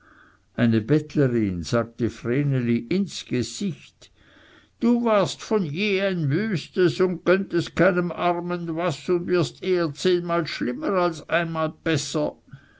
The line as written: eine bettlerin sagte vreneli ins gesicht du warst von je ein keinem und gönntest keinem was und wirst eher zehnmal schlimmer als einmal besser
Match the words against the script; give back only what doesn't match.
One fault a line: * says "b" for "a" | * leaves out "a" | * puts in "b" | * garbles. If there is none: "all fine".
* says "wüstes" for "keinem"
* puts in "armen"